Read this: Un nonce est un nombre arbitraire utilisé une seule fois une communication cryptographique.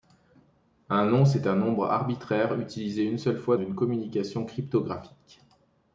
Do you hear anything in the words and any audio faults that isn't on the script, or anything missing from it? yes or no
no